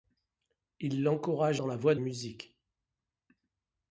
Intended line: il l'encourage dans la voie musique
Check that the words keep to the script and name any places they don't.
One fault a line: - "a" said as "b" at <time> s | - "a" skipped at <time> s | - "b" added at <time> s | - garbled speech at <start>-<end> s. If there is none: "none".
none